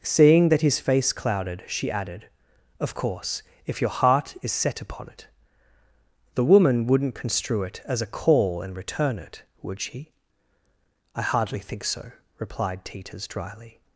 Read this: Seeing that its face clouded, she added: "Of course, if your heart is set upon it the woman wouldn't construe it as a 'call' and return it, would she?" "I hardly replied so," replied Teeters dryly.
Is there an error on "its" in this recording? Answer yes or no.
yes